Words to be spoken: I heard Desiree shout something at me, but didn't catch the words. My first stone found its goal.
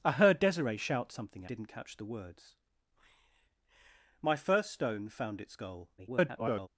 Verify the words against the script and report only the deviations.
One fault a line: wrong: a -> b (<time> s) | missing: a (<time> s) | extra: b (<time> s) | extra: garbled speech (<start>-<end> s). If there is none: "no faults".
missing: at me but (1.4 s)
extra: garbled speech (6.0-6.7 s)